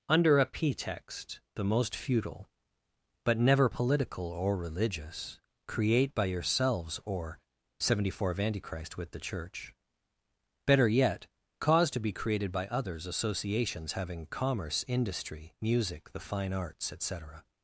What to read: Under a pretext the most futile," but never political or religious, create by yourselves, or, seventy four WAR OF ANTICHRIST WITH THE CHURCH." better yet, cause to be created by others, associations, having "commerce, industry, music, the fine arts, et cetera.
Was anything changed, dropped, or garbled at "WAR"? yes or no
yes